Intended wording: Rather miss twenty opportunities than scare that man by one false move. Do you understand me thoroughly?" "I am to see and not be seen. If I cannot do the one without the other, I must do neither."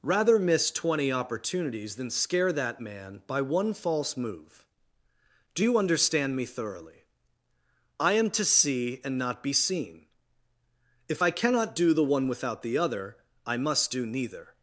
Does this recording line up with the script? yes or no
yes